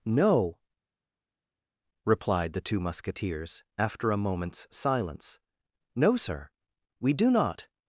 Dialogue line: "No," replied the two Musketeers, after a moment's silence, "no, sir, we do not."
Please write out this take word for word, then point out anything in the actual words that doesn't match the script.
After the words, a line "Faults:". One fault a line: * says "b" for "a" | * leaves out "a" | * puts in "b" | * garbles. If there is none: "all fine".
"No," replied the two Musketeers, after a moment's silence, "no, sir, we do not."
Faults:
all fine